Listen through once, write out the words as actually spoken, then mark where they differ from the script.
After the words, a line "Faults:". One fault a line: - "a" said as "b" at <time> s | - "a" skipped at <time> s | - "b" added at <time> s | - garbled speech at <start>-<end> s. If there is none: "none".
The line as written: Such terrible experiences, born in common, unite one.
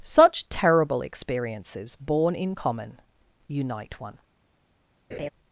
Such terrible experiences, born in common, unite one.
Faults:
none